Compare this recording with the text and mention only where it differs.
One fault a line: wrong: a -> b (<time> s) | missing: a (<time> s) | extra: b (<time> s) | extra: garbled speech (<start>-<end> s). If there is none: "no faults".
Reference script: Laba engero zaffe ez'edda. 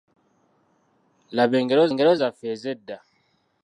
extra: engero (1.9 s)